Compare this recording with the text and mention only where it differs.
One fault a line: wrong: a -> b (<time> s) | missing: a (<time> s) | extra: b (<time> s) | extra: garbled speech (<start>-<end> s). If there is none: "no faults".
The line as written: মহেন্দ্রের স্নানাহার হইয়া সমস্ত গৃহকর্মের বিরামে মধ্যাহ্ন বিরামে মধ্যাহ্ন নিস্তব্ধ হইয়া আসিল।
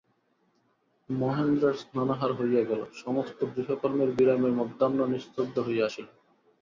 extra: গেল (2.6 s)
missing: বিরামে মধ্যাহ্ন (5.0 s)